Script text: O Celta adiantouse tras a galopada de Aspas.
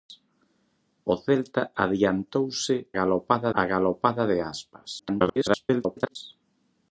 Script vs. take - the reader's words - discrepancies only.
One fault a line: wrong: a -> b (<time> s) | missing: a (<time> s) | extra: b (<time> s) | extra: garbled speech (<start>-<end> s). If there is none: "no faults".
wrong: tras -> galopada (3.0 s)
extra: garbled speech (5.0-6.2 s)